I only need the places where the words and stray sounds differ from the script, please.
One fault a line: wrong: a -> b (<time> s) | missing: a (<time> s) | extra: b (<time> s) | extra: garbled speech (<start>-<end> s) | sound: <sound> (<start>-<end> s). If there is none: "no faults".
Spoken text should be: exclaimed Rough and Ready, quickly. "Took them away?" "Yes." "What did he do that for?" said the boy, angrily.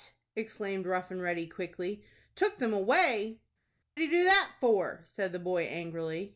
missing: Yes What did (3.4 s)